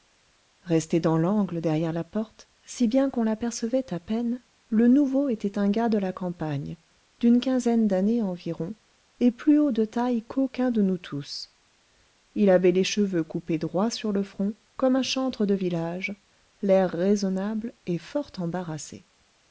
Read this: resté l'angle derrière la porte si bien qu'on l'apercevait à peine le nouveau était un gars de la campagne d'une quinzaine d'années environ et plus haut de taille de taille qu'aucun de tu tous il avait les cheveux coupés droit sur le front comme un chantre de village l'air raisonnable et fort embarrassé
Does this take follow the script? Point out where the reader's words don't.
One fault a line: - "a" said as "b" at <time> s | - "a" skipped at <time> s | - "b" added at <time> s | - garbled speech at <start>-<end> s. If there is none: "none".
- "dans" added at 1.0 s
- "de taille" skipped at 10.2 s
- "tu" said as "nous" at 10.8 s